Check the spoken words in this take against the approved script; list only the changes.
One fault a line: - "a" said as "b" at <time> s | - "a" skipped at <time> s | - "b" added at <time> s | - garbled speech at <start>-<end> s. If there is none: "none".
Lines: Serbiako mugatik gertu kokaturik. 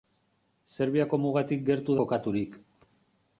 none